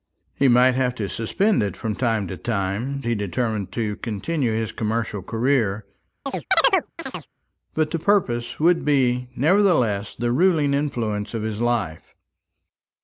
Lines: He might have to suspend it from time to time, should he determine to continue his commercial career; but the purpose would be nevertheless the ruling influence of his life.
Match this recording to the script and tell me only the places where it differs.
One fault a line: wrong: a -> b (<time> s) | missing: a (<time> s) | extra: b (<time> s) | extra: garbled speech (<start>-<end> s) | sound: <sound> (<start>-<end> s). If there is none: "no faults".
missing: should (3.0 s)
sound: chirp (6.3-7.3 s)